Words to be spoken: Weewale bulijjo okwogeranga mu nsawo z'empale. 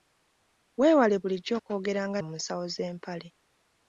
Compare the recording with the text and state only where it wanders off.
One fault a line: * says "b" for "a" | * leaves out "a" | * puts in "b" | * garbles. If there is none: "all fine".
all fine